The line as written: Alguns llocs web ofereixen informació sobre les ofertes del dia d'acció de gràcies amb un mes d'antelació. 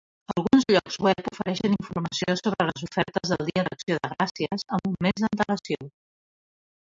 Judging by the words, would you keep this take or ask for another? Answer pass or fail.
pass